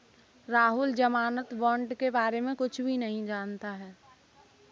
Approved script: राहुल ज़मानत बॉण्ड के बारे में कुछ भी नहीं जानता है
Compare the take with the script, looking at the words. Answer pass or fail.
pass